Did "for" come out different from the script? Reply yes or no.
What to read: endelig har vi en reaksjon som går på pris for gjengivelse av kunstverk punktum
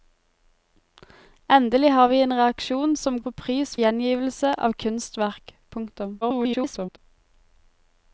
yes